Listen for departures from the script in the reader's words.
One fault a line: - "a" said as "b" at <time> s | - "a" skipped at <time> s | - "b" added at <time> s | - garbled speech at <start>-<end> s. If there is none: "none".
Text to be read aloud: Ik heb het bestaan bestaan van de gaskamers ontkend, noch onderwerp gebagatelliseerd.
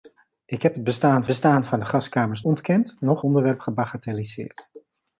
none